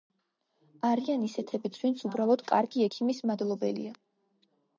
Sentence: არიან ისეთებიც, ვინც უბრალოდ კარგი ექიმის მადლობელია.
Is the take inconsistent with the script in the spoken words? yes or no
no